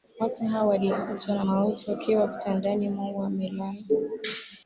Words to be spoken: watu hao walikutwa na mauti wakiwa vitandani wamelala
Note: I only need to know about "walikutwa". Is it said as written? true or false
true